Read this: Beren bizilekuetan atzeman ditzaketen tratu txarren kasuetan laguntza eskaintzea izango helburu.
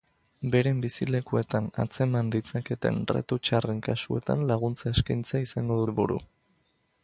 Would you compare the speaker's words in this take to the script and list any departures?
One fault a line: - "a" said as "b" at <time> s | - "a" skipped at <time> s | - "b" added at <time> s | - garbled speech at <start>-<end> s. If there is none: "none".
none